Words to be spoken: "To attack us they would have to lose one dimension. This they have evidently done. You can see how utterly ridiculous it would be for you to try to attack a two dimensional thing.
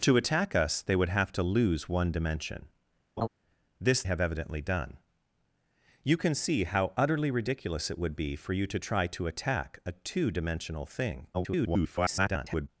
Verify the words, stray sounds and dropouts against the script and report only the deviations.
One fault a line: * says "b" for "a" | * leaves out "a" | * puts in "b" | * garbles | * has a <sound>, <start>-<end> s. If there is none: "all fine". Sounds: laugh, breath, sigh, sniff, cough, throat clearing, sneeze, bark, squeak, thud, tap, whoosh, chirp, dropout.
* has a laugh, 3.2-3.3 s
* leaves out "they"
* garbles